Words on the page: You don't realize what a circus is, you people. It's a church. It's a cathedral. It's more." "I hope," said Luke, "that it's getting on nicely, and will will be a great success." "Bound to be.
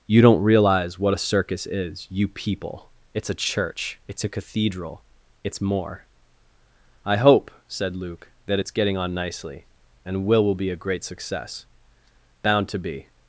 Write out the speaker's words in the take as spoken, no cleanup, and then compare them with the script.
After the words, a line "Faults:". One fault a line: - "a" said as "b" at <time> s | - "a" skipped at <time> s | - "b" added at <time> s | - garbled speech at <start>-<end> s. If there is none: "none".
You don't realize what a circus is, you people. It's a church. It's a cathedral. It's more." "I hope," said Luke, "that it's getting on nicely, and will will be a great success." "Bound to be.
Faults:
none